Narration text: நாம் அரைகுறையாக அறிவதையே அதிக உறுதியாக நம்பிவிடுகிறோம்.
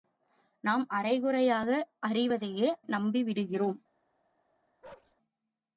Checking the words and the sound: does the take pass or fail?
fail